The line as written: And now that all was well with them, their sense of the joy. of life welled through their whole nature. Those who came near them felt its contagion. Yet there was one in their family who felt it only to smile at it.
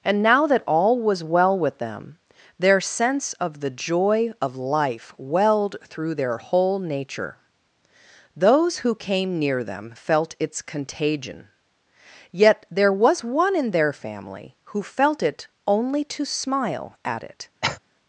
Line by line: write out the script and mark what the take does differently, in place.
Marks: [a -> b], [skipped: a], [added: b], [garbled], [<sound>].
And now that all was well with them, their sense of the joy. of life welled through their whole nature. Those who came near them felt its contagion. Yet there was one in their family who felt it only to smile at it. [cough]